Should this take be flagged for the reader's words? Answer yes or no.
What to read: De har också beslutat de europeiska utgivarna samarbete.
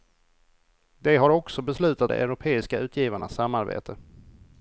no